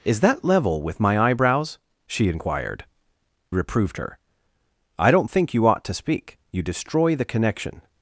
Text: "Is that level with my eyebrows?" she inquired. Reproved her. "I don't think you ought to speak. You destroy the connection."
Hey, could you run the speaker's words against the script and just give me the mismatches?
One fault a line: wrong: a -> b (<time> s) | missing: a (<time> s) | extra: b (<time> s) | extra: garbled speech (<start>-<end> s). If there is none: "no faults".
no faults